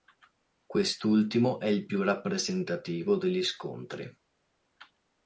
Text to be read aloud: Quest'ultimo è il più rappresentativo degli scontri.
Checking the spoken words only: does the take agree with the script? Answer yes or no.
yes